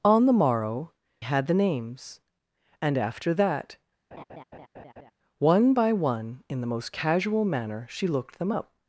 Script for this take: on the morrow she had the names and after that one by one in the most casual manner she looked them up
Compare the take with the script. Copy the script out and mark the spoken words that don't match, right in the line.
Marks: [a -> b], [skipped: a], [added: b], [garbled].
on the morrow [skipped: she] had the names and after that one by one in the most casual manner she looked them up